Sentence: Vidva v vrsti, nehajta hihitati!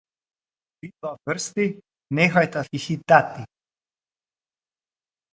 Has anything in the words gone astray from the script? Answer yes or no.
no